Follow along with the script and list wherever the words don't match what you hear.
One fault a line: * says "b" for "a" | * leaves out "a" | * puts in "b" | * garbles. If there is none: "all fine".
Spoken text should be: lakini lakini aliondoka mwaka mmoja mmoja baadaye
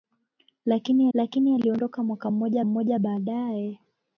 all fine